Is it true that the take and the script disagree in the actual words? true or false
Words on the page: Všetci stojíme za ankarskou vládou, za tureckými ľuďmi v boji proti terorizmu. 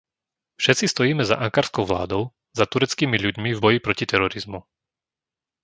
false